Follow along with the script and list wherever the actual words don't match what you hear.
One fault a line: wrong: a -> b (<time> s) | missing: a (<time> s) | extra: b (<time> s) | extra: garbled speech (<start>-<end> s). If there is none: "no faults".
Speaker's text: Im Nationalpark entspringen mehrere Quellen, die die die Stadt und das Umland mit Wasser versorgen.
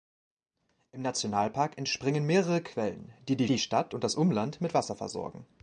no faults